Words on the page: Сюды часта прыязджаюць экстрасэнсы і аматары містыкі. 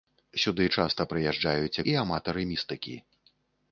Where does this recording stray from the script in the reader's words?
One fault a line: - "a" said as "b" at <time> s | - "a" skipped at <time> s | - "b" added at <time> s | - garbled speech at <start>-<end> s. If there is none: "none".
- "экстрасэнсы" skipped at 1.8 s